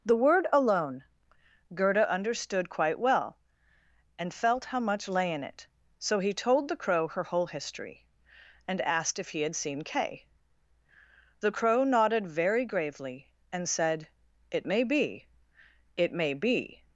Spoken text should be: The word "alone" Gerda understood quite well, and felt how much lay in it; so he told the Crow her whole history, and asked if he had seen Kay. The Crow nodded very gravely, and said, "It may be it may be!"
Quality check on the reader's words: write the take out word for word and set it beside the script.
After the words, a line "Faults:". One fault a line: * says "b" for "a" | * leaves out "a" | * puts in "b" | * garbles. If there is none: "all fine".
The word "alone" Gerda understood quite well, and felt how much lay in it; so he told the Crow her whole history, and asked if he had seen Kay. The Crow nodded very gravely, and said, "It may be it may be!"
Faults:
all fine